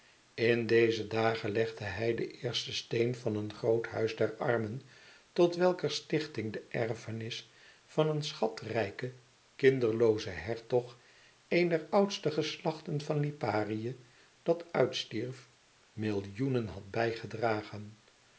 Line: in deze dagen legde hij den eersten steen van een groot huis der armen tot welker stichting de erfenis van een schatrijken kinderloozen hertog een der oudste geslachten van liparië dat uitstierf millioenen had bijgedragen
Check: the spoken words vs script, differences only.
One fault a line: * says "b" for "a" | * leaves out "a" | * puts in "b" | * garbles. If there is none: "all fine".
all fine